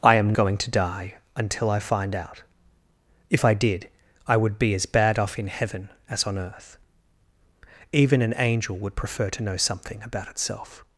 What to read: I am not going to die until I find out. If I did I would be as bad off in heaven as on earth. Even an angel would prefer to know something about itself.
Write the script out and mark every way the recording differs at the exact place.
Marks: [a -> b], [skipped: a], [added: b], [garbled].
I am [skipped: not] going to die until I find out. If I did I would be as bad off in heaven as on earth. Even an angel would prefer to know something about itself.